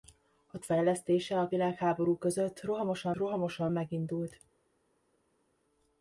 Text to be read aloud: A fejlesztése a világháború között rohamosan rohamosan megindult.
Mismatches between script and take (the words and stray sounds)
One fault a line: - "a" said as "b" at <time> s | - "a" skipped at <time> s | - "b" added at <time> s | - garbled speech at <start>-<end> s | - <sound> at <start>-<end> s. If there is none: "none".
none